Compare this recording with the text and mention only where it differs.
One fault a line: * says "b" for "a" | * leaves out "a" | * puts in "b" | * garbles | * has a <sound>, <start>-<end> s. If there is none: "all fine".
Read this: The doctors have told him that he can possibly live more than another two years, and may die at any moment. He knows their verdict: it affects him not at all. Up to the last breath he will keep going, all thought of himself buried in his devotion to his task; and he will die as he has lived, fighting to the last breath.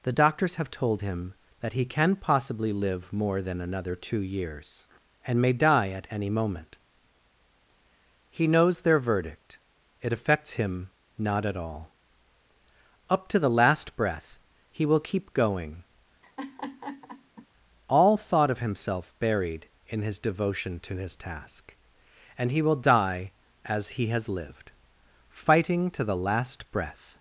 * has a laugh, 16.2-17.5 s